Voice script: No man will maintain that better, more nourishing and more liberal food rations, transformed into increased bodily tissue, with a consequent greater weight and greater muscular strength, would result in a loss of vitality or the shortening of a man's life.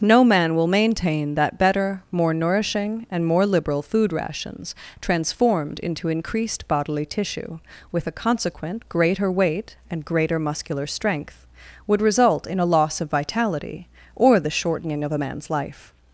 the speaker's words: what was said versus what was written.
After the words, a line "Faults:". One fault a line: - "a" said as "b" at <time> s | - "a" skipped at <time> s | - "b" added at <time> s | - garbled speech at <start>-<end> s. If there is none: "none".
No man will maintain that better, more nourishing and more liberal food rations, transformed into increased bodily tissue, with a consequent greater weight and greater muscular strength, would result in a loss of vitality or the shortening of a man's life.
Faults:
none